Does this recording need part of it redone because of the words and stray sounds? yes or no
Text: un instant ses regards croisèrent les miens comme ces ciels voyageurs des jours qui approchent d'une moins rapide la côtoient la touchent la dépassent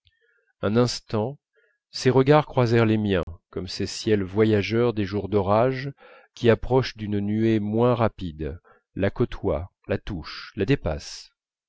yes